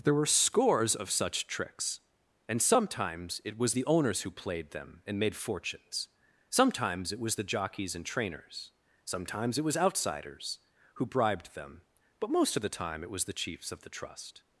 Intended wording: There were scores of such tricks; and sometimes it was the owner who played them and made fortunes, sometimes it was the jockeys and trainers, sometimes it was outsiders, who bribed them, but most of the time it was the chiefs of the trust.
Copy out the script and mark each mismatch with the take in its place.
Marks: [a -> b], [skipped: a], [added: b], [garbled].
There were scores of such tricks; and sometimes it was the [owner -> owners] who played them and made fortunes, sometimes it was the jockeys and trainers, sometimes it was outsiders, who bribed them, but most of the time it was the chiefs of the trust.